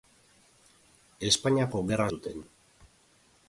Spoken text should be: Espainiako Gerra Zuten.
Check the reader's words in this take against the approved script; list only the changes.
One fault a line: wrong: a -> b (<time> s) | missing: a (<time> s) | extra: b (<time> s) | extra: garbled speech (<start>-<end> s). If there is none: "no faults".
no faults